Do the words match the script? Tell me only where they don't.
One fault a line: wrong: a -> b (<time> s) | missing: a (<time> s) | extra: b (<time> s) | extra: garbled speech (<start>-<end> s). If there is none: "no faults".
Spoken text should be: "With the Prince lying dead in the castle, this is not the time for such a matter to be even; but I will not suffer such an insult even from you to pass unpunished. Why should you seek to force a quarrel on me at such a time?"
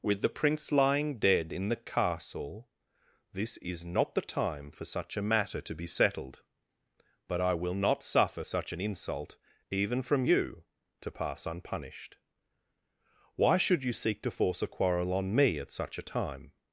wrong: even -> settled (5.8 s)